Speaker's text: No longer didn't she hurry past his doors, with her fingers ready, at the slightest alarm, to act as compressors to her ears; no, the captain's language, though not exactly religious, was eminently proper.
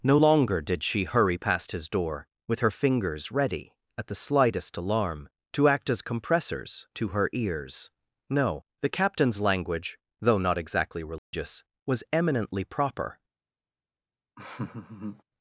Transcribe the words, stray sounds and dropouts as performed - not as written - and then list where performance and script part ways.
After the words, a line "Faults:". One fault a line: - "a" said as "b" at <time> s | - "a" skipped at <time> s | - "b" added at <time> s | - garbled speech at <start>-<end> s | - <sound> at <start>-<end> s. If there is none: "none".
No longer did she hurry past his door, with her fingers ready, at the slightest alarm, to act as compressors to her ears; no, the captain's language, though not exactly religious, was eminently proper.
Faults:
- "didn't" said as "did" at 0.6 s
- "doors" said as "door" at 1.9 s
- dropout at 11.2-11.3 s
- laugh at 14.4-15.2 s